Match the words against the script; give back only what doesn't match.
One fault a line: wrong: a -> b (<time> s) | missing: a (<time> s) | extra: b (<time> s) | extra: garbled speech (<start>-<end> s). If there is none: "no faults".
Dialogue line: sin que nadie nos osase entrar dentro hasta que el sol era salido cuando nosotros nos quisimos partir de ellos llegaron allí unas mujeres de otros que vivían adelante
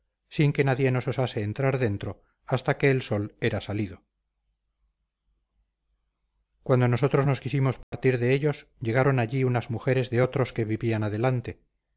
no faults